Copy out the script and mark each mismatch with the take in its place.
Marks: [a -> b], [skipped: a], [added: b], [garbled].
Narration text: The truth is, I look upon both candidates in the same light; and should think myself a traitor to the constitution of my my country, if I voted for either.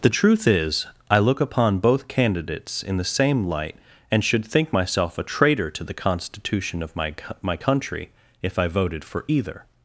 The truth is, I look upon both candidates in the same light; and should think myself a traitor to the constitution of my my country, if I voted for either.